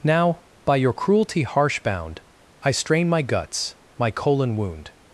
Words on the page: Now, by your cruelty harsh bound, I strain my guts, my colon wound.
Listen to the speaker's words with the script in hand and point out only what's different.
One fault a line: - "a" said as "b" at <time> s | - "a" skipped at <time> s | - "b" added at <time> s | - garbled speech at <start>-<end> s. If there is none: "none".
none